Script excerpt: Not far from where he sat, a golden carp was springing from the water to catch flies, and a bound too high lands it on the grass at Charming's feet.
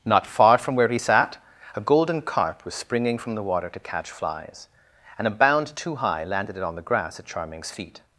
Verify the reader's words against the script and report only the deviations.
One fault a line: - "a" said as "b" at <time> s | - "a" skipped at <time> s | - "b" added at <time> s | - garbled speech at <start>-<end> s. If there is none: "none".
- "lands" said as "landed" at 6.2 s